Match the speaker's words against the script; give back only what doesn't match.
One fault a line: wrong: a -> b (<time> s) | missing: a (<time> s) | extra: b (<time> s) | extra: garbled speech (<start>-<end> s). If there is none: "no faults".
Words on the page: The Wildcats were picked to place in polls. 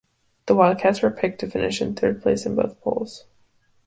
extra: finish in third (1.4 s)
extra: both (2.5 s)